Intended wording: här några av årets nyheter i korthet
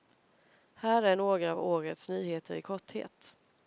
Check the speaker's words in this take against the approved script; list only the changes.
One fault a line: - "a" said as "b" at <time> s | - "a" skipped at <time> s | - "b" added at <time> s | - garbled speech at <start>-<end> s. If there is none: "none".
- "är" added at 1.0 s